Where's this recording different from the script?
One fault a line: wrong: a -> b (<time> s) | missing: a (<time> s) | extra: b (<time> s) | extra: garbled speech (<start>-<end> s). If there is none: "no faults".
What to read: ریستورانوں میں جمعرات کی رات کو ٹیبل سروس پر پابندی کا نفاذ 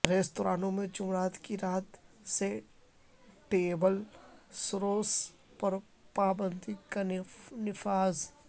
wrong: کو -> سے (2.3 s)